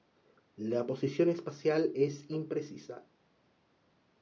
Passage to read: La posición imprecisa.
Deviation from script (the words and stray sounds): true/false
true